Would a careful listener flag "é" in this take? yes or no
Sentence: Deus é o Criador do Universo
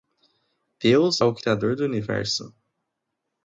yes